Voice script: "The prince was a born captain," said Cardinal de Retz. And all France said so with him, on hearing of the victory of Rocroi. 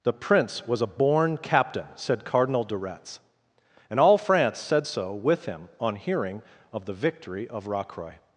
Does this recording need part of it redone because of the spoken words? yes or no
no